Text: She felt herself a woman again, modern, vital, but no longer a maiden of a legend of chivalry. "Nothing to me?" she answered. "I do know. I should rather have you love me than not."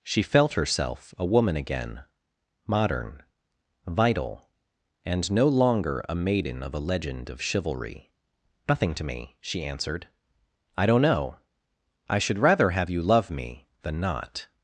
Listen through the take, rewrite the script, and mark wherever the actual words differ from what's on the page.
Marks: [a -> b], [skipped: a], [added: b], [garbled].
She felt herself a woman again, modern, vital, [but -> and] no longer a maiden of a legend of chivalry. "Nothing to me?" she answered. "I [do -> don't] know. I should rather have you love me than not."